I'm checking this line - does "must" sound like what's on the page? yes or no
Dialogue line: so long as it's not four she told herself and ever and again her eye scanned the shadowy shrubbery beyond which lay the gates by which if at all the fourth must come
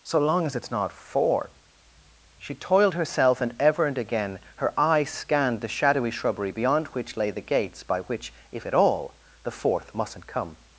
no